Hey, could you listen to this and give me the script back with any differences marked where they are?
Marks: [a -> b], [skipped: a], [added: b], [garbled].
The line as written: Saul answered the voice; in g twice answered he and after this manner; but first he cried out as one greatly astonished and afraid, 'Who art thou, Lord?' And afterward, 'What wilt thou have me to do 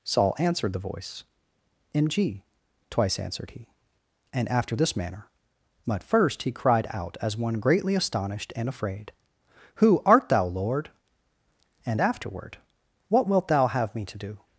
Saul answered the voice; in g twice answered he and after this manner; but first he cried out as one greatly astonished and afraid, 'Who art thou, Lord?' And afterward, 'What wilt thou have me to do